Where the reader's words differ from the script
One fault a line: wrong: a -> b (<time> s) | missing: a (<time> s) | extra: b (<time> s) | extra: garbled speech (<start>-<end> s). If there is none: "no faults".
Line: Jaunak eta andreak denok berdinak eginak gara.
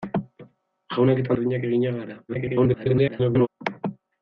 missing: andreak denok (1.3 s)
extra: garbled speech (2.3-3.5 s)